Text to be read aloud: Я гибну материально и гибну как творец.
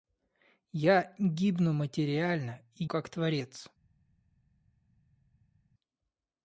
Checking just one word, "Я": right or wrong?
right